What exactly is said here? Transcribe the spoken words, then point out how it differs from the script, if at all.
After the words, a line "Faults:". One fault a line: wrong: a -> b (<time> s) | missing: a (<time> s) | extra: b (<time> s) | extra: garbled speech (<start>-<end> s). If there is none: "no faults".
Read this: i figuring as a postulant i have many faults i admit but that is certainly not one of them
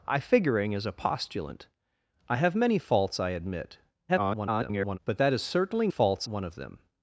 i figuring as a postulant i have many faults i admit [garbled] but that is certainly faults one of them
Faults:
extra: garbled speech (4.1-5.0 s)
wrong: not -> faults (5.9 s)